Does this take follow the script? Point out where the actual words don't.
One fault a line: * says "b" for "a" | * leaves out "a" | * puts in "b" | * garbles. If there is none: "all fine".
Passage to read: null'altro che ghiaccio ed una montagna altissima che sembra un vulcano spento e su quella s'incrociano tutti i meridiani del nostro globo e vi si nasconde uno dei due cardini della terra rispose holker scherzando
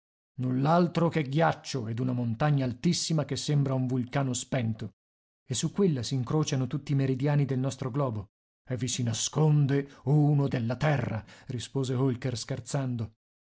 * leaves out "dei due cardini"